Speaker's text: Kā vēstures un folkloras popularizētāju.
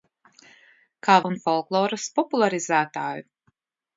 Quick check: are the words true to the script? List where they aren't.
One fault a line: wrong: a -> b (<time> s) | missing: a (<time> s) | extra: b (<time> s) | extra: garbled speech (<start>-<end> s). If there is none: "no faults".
missing: vēstures (1.2 s)